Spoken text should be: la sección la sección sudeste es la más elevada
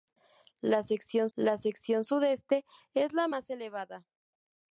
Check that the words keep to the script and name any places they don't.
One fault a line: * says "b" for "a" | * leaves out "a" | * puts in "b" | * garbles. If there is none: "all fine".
all fine